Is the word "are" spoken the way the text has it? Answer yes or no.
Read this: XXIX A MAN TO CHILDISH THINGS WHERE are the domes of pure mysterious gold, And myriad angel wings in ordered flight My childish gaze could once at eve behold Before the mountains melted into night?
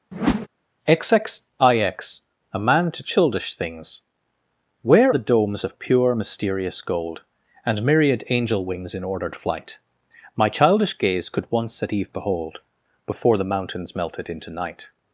no